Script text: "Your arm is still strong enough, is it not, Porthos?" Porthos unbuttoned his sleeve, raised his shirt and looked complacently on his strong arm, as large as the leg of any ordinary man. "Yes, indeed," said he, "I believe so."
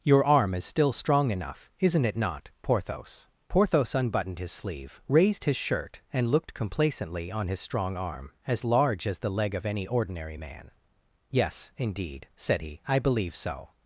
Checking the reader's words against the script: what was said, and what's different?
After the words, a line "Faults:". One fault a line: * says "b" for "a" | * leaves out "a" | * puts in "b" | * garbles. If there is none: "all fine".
"Your arm is still strong enough, isn't it not, Porthos?" Porthos unbuttoned his sleeve, raised his shirt and looked complacently on his strong arm, as large as the leg of any ordinary man. "Yes, indeed," said he, "I believe so."
Faults:
* says "isn't" for "is"